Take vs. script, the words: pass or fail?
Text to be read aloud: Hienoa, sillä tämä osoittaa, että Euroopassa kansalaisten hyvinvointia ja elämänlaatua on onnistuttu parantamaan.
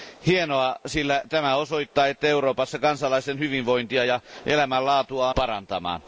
fail